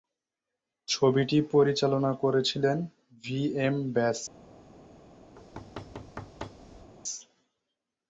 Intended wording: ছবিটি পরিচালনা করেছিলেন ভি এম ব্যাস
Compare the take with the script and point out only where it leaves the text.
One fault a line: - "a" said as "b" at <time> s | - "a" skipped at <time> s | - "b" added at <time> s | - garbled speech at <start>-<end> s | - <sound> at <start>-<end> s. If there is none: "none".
- thud at 5.4-6.9 s